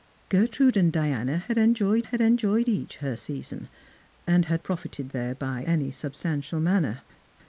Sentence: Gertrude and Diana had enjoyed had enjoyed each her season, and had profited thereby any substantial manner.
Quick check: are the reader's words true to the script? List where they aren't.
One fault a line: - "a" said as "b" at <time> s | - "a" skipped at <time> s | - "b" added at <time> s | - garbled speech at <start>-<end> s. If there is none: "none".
none